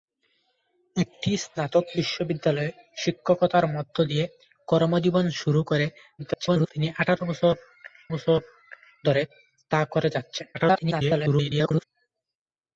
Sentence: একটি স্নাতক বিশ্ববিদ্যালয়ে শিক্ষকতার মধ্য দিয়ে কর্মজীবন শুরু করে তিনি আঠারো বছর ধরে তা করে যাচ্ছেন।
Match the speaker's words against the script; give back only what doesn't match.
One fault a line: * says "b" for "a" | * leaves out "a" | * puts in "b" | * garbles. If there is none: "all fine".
* garbles
* puts in "বছর"
* garbles